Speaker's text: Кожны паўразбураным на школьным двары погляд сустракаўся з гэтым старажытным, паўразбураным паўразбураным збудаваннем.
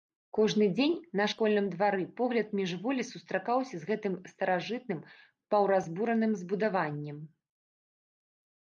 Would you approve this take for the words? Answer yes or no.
no